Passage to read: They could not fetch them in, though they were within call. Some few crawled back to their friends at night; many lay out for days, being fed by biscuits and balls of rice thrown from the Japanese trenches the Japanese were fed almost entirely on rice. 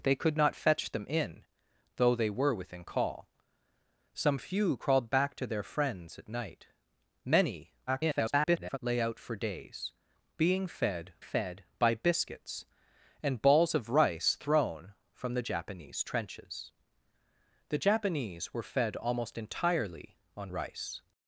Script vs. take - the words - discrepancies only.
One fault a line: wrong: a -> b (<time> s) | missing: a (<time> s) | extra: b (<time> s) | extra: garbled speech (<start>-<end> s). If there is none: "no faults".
extra: garbled speech (7.9-8.8 s)
extra: fed (11.2 s)